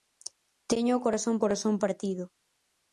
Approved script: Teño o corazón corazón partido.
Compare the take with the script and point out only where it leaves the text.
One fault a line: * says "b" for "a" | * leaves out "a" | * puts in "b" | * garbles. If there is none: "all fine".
all fine